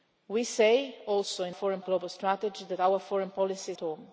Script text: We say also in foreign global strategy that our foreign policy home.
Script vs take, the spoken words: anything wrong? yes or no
no